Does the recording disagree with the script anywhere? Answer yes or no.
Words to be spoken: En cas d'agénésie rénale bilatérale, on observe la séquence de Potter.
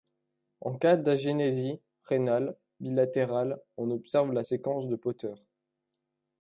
no